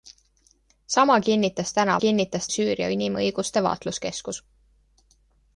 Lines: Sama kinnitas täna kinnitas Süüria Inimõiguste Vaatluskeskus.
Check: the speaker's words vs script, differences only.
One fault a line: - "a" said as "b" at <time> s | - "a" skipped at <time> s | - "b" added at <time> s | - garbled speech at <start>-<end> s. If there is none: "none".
none